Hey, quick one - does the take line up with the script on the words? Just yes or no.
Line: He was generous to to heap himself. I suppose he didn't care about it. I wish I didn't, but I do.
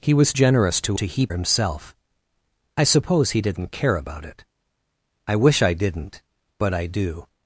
yes